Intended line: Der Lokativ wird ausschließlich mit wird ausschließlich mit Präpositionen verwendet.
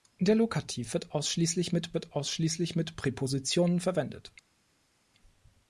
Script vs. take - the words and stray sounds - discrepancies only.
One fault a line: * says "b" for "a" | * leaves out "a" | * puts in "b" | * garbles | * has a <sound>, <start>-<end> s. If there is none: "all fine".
all fine